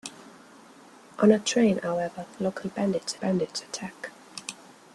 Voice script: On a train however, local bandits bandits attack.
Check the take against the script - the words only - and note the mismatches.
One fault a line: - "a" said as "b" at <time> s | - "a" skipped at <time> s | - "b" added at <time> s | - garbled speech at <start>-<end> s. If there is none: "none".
none